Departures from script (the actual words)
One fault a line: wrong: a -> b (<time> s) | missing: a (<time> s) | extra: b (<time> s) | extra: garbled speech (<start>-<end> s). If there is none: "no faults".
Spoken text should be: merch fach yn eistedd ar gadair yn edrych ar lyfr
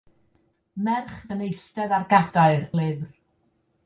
missing: fach (1.2 s)
missing: yn edrych ar (2.7 s)